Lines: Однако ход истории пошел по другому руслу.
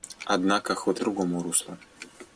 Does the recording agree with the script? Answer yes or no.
no